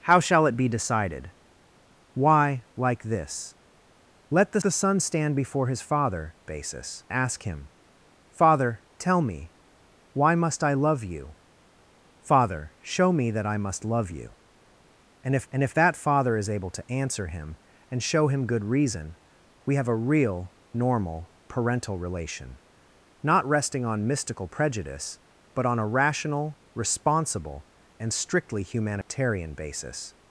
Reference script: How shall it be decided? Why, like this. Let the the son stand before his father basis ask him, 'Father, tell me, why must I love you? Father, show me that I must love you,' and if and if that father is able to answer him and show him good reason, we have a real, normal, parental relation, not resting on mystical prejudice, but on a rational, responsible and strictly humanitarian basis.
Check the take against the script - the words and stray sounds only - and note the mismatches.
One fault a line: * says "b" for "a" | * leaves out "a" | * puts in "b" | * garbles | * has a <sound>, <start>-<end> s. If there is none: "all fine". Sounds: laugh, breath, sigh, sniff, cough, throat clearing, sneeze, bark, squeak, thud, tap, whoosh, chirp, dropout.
* has a dropout, 29.0-29.1 s